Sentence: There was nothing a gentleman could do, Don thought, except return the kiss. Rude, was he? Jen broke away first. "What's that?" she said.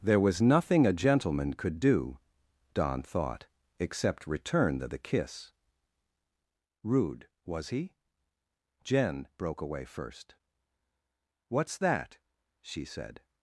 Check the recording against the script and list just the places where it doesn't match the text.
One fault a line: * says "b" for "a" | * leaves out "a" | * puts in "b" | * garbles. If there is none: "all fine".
* puts in "the"